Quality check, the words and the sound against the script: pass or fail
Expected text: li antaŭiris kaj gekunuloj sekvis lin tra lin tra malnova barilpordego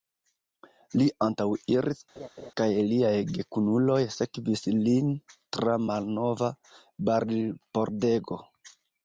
fail